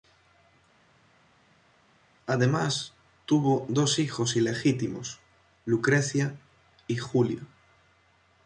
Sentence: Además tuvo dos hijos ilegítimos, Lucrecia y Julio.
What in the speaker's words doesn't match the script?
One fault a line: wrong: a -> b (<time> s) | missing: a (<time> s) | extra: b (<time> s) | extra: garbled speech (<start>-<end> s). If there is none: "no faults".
no faults